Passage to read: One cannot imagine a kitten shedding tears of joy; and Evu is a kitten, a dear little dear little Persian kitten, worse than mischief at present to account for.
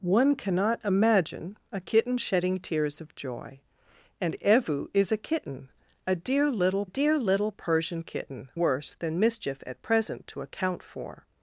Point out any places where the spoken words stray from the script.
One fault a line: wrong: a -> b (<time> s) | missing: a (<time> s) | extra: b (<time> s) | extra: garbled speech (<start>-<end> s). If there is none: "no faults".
no faults